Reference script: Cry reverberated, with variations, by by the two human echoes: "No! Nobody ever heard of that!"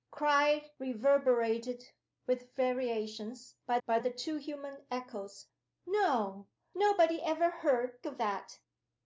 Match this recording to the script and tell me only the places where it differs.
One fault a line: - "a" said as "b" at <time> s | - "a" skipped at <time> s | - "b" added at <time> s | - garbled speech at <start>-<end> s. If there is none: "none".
none